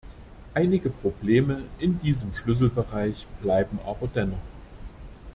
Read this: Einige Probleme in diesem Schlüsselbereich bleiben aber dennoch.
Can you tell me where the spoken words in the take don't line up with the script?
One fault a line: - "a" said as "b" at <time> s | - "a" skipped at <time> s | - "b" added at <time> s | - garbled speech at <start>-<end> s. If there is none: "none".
none